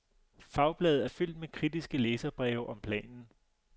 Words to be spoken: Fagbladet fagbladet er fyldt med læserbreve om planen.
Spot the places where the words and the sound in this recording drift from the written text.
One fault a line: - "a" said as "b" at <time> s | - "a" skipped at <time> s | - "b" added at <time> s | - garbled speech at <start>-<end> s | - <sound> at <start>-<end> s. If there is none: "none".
- "fagbladet" skipped at 1.1 s
- "kritiske" added at 1.5 s